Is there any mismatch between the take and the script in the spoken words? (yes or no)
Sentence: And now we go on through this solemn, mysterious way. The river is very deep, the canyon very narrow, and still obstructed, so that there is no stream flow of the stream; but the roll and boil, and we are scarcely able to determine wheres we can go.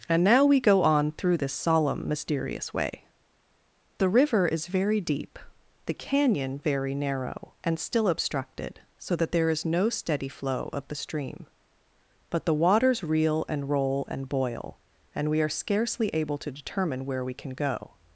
yes